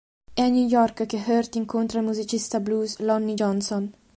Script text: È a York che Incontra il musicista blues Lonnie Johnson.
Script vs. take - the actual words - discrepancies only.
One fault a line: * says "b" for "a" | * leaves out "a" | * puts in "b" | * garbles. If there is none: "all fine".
* puts in "New"
* puts in "Hurt"